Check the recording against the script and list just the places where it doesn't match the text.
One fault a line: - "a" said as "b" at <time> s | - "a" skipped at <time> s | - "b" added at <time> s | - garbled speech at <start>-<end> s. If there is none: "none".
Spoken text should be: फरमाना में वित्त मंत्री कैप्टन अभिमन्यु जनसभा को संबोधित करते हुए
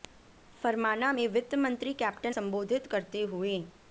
- "अभिमन्यु जनसभा को" skipped at 2.3 s